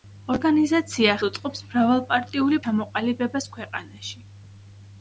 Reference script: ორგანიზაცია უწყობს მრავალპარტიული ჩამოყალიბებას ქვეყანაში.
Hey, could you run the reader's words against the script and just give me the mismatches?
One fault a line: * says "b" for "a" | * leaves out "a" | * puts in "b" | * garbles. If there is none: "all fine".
all fine